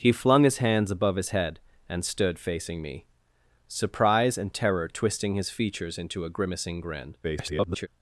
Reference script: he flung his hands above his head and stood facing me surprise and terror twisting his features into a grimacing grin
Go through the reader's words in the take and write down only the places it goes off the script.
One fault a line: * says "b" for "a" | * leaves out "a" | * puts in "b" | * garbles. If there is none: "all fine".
* garbles